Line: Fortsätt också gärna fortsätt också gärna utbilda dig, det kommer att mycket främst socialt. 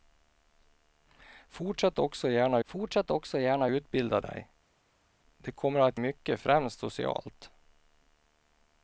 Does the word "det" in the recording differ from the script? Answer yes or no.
no